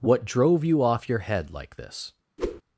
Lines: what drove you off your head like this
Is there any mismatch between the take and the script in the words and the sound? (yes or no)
yes